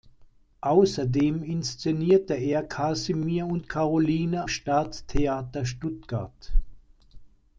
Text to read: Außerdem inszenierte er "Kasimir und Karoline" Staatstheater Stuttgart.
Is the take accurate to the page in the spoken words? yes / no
yes